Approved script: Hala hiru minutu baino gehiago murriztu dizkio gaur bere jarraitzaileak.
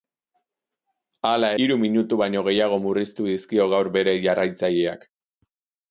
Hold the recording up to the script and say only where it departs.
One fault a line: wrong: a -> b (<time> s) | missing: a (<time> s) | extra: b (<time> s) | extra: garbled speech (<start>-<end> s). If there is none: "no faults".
no faults